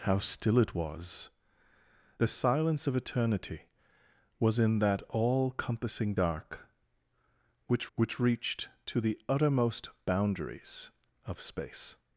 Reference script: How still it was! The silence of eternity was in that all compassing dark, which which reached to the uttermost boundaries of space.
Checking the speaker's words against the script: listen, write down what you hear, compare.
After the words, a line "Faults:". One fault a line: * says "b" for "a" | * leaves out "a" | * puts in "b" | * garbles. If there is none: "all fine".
How still it was! The silence of eternity was in that all compassing dark, which which reached to the uttermost boundaries of space.
Faults:
all fine